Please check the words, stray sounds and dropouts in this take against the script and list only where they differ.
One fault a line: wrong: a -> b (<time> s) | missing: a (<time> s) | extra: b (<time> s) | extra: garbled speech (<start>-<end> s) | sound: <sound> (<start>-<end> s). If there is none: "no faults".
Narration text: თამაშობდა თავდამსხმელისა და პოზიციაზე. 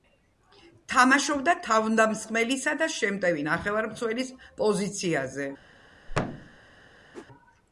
extra: შემტევი ნახევარმცველის (2.9 s)
sound: thud (6.1-6.6 s)
sound: whoosh (7.1-7.3 s)